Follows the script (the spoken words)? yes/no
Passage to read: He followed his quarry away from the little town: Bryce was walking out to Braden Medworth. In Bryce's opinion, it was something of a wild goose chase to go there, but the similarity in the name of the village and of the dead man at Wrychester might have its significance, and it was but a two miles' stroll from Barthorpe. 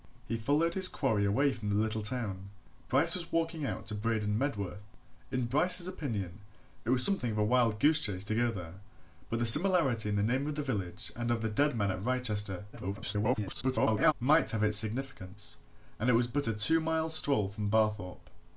no